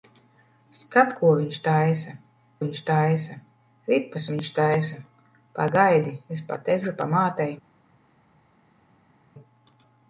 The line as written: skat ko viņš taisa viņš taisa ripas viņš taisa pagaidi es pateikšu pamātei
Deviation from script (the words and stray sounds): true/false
false